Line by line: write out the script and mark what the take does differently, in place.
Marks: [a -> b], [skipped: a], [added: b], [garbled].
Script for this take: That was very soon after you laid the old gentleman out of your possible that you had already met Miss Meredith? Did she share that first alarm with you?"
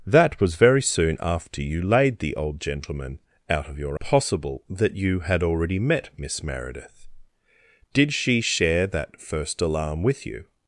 That was very soon after you laid the old gentleman out of your possible that you had already met Miss Meredith? Did she share that first alarm with you?"